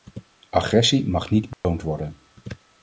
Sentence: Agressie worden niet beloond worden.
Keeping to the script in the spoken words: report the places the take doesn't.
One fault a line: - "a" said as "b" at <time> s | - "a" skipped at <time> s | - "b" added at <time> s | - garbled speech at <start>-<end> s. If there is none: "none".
- "worden" said as "mag" at 1.1 s